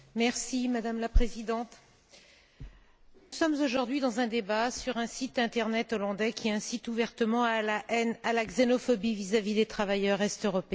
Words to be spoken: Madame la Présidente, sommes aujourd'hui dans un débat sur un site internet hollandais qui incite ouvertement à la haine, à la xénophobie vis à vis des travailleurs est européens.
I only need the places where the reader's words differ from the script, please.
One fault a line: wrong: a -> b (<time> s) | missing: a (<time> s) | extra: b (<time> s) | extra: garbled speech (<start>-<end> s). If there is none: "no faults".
no faults